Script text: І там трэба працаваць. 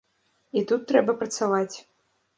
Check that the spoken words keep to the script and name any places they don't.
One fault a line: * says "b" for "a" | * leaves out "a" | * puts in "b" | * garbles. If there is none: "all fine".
* says "тут" for "там"